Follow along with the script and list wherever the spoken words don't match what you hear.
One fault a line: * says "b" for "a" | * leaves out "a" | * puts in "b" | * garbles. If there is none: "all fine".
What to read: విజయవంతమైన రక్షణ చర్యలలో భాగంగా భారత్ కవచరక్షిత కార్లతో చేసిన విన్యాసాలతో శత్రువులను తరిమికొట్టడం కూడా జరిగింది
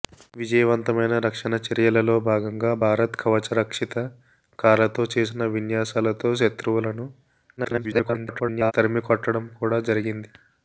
* garbles